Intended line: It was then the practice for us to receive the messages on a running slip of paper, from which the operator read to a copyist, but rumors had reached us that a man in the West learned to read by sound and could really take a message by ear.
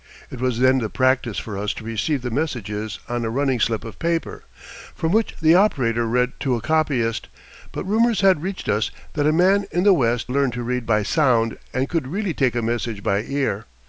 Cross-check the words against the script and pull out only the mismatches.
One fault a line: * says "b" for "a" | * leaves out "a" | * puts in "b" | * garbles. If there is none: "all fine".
all fine